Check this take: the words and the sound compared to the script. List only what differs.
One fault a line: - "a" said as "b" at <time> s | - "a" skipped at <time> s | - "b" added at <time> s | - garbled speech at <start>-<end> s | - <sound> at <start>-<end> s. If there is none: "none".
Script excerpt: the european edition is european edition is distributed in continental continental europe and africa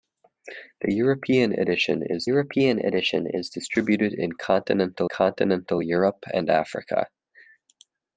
none